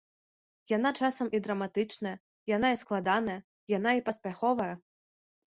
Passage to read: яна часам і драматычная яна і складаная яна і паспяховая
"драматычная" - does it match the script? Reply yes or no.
yes